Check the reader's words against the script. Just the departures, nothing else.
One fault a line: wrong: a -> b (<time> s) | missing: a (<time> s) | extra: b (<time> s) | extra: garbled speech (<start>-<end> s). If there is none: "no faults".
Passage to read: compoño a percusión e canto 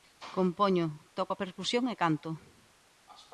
extra: toco (1.2 s)